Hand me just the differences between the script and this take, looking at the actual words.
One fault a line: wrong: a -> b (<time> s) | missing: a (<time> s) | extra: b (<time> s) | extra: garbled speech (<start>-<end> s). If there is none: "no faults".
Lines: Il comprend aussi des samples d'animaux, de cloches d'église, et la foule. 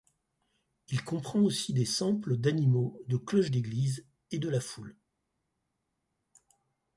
extra: de (4.4 s)